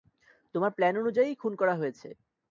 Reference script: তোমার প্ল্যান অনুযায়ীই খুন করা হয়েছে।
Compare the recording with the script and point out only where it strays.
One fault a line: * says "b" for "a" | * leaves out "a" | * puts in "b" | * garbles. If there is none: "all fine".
all fine